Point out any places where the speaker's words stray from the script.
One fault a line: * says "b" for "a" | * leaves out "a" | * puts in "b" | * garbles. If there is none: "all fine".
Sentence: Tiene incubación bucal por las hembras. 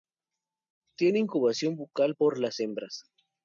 all fine